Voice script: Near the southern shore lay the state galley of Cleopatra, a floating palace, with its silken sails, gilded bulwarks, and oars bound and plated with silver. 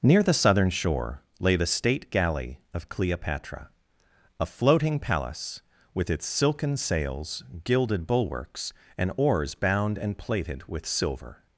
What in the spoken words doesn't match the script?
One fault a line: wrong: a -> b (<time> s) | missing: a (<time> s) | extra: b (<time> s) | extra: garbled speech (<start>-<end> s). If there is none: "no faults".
no faults